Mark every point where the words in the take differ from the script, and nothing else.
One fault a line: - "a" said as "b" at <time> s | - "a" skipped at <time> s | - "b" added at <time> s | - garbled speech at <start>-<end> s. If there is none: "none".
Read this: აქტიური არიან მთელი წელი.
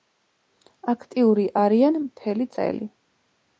none